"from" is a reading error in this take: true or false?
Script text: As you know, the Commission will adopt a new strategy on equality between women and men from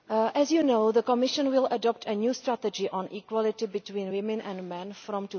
false